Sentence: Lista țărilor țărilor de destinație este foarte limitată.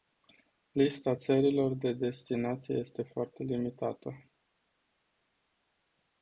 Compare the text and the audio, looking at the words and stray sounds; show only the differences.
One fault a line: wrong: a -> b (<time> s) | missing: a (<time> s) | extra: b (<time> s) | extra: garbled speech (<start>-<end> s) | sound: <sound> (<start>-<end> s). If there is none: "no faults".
missing: țărilor (1.7 s)